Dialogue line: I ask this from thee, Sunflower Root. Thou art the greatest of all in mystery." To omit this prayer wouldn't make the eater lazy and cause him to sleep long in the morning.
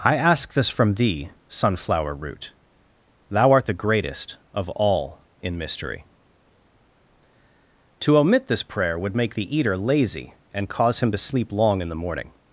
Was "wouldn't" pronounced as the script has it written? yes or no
no